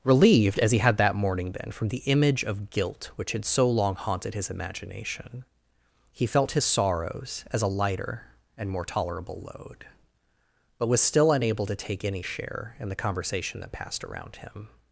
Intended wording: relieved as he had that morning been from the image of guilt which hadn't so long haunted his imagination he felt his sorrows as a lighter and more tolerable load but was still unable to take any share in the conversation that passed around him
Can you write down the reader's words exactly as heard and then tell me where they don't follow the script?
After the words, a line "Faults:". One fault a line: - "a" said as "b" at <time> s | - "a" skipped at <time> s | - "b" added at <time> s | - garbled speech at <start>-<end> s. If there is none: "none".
relieved as he had that morning been from the image of guilt which had so long haunted his imagination he felt his sorrows as a lighter and more tolerable load but was still unable to take any share in the conversation that passed around him
Faults:
- "hadn't" said as "had" at 3.3 s